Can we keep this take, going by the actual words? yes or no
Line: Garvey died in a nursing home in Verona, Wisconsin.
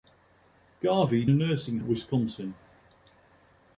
no